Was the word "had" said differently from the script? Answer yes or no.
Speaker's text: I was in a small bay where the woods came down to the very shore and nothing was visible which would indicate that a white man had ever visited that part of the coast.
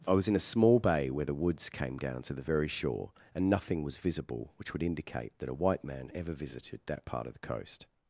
yes